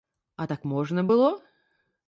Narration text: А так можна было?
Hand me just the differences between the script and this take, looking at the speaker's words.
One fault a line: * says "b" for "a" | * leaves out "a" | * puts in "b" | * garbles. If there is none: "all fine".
all fine